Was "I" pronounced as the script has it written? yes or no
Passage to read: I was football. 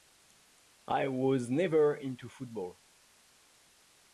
yes